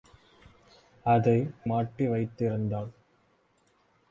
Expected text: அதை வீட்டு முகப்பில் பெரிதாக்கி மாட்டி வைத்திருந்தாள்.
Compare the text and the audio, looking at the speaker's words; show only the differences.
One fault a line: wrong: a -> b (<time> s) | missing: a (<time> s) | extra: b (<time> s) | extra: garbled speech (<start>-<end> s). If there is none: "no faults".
missing: வீட்டு முகப்பில் பெரிதாக்கி (1.4 s)